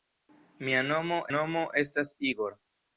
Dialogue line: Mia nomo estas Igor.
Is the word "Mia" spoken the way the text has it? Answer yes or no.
yes